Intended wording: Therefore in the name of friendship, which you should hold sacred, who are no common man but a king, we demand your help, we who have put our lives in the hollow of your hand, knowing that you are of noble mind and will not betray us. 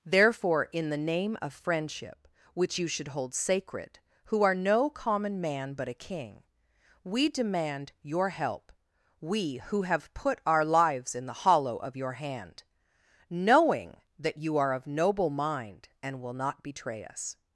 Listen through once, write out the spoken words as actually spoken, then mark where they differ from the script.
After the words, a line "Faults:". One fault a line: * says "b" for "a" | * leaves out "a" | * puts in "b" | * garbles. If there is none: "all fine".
Therefore in the name of friendship, which you should hold sacred, who are no common man but a king, we demand your help, we who have put our lives in the hollow of your hand, knowing that you are of noble mind and will not betray us.
Faults:
all fine